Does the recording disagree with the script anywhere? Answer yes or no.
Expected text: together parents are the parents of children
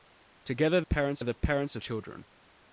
no